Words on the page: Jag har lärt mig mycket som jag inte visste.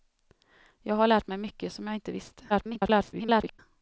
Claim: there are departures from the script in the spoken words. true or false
true